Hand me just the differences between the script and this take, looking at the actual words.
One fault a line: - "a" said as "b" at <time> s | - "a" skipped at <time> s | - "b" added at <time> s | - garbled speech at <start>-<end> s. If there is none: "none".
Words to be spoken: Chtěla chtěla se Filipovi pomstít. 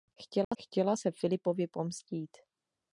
none